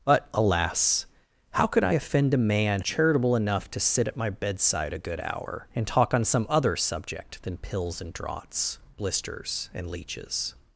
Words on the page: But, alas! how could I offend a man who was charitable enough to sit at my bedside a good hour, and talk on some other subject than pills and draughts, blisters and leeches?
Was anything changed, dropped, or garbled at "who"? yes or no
yes